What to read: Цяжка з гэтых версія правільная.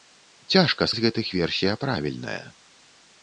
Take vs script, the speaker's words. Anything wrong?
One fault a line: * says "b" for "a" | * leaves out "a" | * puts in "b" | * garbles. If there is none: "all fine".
all fine